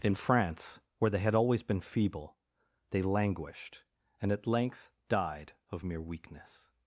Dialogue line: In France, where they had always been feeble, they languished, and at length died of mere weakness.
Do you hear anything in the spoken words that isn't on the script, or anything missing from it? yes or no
no